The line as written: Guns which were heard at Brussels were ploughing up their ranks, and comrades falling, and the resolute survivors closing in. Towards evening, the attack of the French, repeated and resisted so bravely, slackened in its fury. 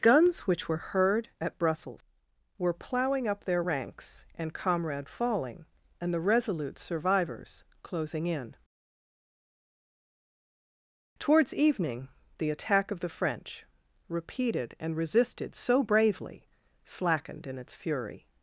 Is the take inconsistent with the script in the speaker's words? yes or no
yes